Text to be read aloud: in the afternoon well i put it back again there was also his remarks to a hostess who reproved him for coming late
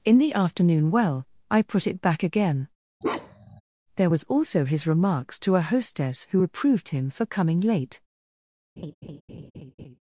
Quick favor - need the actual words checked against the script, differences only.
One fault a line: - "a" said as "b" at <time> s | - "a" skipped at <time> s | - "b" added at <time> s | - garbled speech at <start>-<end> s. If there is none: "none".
none